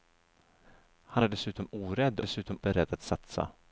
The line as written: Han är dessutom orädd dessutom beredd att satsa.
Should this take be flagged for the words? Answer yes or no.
no